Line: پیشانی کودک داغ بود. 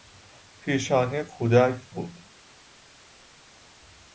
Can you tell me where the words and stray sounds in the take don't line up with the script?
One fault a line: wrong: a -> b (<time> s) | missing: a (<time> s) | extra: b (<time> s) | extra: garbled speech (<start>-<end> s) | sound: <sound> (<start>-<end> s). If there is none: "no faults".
missing: داغ (1.9 s)